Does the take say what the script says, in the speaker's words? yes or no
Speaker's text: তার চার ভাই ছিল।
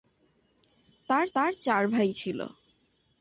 no